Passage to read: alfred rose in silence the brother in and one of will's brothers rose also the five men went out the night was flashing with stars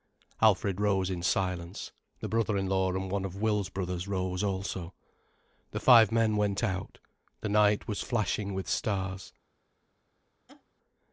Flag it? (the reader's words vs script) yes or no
yes